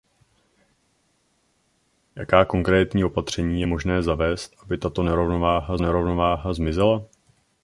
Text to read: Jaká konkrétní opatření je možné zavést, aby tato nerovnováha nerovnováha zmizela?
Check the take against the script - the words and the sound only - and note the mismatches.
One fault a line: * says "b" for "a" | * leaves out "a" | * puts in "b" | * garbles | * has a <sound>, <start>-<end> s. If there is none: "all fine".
all fine